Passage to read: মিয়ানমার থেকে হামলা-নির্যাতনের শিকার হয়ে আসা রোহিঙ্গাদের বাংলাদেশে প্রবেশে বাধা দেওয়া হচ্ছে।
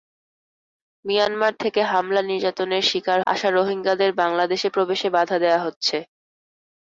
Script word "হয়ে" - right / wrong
wrong